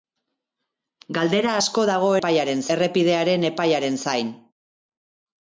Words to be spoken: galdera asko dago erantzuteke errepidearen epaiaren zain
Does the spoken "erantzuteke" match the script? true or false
false